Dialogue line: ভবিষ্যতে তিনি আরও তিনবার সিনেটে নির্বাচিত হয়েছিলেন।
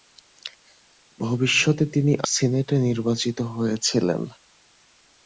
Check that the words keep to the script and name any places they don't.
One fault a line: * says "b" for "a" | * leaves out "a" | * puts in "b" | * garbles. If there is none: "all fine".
* leaves out "আরও তিনবার"